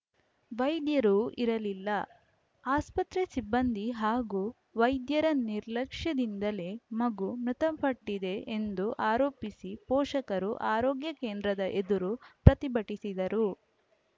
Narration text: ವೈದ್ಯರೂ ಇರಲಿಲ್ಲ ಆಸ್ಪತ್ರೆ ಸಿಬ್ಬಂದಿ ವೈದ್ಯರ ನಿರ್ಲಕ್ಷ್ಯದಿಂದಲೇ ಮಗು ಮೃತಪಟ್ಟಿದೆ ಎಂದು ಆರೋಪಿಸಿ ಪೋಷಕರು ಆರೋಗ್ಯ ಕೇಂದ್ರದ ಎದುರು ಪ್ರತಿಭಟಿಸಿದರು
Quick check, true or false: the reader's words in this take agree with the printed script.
false